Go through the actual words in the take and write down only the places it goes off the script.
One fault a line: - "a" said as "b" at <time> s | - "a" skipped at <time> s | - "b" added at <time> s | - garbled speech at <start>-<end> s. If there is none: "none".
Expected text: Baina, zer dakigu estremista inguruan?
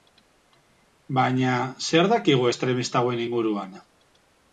- "hauen" added at 3.0 s